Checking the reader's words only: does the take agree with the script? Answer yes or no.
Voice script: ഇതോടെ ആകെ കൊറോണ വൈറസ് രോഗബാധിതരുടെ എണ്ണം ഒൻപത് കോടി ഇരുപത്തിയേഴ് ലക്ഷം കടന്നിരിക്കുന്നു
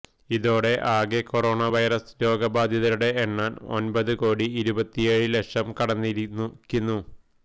yes